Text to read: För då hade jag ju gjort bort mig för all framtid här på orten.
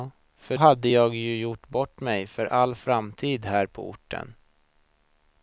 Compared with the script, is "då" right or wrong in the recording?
wrong